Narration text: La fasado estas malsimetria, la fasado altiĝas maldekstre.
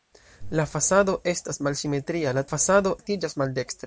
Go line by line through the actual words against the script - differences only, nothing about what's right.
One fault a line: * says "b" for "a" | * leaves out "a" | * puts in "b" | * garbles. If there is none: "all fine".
all fine